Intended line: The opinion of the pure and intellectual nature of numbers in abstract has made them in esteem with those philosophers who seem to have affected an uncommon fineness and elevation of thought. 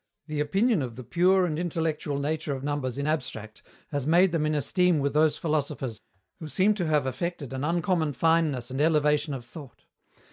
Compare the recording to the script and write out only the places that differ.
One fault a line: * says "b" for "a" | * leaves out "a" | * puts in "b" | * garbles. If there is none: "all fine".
all fine